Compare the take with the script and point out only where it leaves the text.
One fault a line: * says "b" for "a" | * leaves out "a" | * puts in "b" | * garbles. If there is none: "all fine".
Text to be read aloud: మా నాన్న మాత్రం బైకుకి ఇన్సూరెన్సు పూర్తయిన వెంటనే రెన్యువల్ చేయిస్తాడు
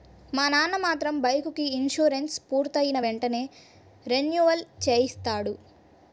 all fine